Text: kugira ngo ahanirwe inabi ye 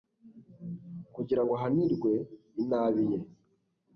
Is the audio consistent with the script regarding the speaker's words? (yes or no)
yes